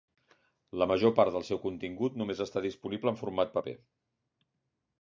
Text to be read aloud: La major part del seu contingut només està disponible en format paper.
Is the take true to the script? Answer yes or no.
yes